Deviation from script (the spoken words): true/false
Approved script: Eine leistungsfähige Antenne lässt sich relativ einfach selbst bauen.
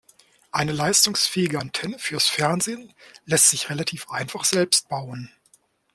true